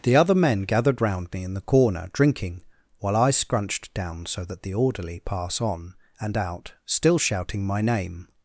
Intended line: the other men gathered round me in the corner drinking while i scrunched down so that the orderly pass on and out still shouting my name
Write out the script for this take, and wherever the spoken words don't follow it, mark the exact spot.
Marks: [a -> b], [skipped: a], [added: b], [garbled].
the other men gathered round me in the corner drinking while i scrunched down so that the orderly pass on and out still shouting my name